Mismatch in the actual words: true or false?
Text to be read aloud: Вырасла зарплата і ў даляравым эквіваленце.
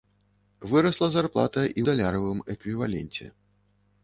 true